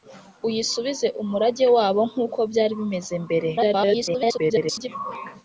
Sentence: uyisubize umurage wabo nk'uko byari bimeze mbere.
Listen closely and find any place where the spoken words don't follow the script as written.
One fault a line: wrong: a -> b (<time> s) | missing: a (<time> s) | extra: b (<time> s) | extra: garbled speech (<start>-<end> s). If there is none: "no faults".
extra: garbled speech (3.6-4.9 s)